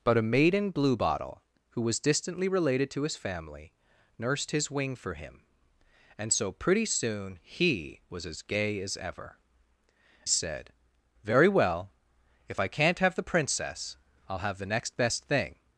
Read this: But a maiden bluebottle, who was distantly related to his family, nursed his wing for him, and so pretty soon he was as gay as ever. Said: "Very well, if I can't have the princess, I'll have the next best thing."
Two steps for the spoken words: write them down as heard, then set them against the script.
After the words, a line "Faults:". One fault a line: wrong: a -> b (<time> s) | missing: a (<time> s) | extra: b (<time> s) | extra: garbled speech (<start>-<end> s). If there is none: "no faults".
But a maiden bluebottle, who was distantly related to his family, nursed his wing for him, and so pretty soon he was as gay as ever. Said: "Very well, if I can't have the princess, I'll have the next best thing."
Faults:
no faults